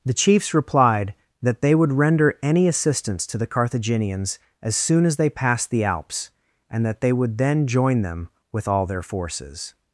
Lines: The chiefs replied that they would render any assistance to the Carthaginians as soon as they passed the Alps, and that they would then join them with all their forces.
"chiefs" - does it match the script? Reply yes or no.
yes